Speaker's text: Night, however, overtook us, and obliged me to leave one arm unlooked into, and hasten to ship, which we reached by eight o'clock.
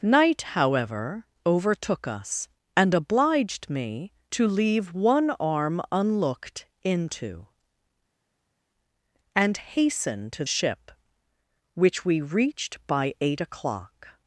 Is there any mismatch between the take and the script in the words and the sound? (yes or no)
no